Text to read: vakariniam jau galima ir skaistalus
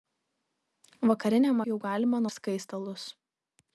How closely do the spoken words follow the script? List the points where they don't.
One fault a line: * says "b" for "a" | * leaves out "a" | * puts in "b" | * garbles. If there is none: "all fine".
all fine